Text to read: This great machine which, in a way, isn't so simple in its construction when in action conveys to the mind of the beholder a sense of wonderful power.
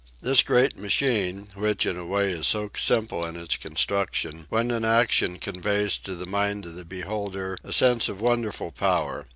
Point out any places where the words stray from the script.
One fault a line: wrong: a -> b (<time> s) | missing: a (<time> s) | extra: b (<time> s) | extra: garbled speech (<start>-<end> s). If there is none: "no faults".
wrong: isn't -> is (2.3 s)